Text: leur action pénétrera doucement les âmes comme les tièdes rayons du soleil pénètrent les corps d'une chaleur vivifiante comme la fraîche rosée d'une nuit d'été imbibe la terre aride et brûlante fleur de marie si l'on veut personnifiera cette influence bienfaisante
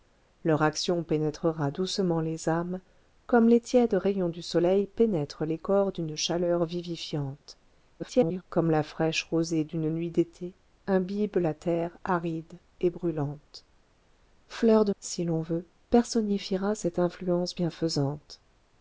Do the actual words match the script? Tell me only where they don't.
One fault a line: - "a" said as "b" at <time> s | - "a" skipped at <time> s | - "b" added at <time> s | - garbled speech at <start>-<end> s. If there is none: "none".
- garbled speech at 8.0-8.4 s
- "marie" skipped at 14.9 s